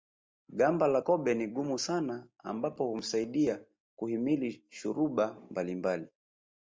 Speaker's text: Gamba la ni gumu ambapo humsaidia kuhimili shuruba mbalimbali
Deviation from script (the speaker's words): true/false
true